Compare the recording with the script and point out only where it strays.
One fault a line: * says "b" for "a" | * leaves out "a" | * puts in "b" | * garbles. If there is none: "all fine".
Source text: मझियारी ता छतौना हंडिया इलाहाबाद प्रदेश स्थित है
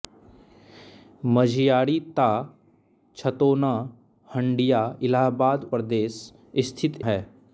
all fine